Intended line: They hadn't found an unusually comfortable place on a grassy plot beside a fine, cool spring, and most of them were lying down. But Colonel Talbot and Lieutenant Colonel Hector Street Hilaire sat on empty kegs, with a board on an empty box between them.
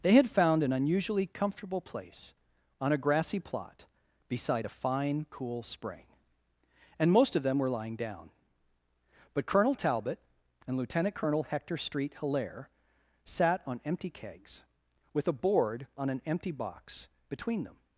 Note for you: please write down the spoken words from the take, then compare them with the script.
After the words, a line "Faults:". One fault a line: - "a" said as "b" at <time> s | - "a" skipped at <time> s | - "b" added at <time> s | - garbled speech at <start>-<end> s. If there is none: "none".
They had found an unusually comfortable place on a grassy plot beside a fine, cool spring, and most of them were lying down. But Colonel Talbot and Lieutenant Colonel Hector Street Hilaire sat on empty kegs, with a board on an empty box between them.
Faults:
- "hadn't" said as "had" at 0.1 s